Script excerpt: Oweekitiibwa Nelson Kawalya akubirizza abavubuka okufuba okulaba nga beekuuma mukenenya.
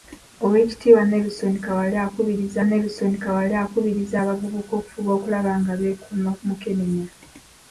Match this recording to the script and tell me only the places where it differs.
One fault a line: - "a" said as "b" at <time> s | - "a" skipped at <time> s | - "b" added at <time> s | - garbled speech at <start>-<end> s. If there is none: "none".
- "Nelson Kawalya akubirizza" added at 2.6 s